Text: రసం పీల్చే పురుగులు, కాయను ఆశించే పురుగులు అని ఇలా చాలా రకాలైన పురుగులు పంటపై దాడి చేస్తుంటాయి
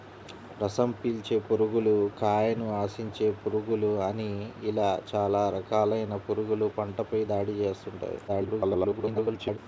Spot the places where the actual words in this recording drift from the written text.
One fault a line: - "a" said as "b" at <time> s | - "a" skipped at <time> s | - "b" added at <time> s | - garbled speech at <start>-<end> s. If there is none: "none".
- garbled speech at 8.3-9.6 s